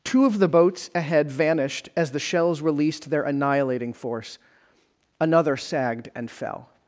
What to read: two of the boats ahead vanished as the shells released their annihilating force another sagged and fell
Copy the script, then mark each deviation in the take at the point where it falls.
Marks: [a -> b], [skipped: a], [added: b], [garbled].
two of the boats ahead vanished as the shells released their annihilating force another sagged and fell